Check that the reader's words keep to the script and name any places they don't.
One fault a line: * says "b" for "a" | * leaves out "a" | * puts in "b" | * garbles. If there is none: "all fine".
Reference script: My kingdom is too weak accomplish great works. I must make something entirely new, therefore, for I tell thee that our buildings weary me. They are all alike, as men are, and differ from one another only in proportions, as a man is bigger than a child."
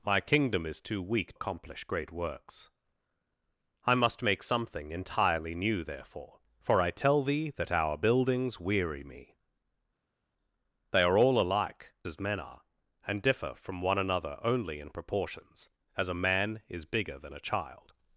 all fine